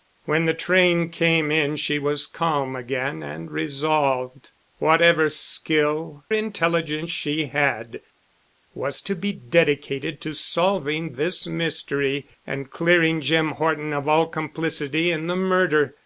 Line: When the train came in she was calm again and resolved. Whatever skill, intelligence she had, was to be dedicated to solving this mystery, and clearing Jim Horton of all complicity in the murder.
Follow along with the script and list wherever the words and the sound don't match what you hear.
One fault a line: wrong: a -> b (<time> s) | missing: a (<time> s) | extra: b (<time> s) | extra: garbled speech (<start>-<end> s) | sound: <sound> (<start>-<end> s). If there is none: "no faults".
no faults